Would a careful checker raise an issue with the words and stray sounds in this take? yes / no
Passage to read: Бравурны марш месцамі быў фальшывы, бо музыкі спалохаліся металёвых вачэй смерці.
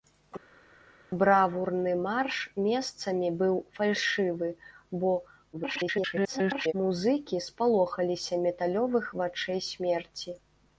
yes